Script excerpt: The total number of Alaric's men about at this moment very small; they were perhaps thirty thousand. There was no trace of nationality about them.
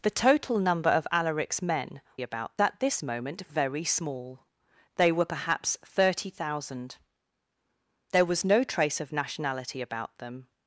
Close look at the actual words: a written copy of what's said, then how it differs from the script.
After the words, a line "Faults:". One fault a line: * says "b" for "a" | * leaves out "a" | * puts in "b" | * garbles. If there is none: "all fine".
The total number of Alaric's men about at this moment very small; they were perhaps thirty thousand. There was no trace of nationality about them.
Faults:
all fine